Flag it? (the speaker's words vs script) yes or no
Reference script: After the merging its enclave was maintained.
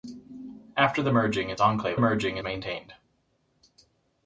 yes